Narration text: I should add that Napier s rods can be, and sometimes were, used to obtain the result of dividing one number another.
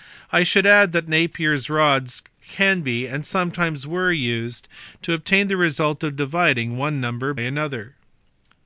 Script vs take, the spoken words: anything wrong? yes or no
no